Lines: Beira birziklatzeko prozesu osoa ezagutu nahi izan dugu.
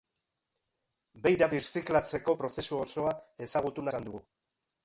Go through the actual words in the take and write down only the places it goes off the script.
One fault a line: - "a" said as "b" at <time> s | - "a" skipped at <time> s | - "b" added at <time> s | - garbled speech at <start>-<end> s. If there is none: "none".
- "nahi" skipped at 3.9 s